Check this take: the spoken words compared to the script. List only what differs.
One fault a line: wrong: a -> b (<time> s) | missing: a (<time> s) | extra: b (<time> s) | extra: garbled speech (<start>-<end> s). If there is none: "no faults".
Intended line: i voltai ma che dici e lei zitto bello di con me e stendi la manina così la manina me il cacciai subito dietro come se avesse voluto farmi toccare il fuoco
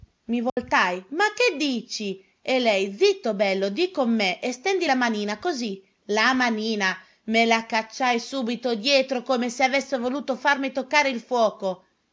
wrong: il -> la (7.5 s)